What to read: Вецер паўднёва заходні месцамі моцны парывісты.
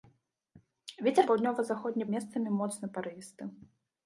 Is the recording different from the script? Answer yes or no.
no